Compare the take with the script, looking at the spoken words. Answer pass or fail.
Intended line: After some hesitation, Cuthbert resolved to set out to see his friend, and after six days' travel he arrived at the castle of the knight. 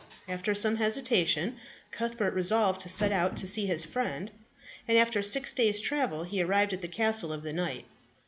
pass